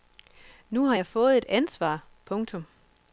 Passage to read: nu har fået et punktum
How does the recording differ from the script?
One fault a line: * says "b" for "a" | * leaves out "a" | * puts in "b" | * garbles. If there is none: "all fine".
* puts in "jeg"
* puts in "ansvar"